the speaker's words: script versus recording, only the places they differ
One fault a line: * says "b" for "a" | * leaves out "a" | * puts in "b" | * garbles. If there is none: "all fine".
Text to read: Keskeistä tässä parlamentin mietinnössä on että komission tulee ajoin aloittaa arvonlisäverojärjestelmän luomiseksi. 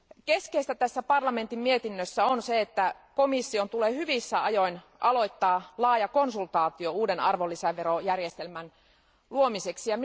* puts in "se"
* puts in "hyvissä"
* puts in "laaja konsultaatio uuden"